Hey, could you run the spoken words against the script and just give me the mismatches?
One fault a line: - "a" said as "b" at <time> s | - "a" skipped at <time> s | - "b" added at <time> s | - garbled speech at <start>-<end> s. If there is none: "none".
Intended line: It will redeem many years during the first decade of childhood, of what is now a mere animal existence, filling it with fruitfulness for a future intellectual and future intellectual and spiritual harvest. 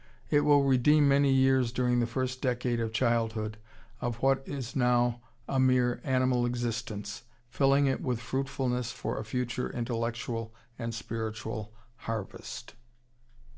- "future intellectual and" skipped at 10.9 s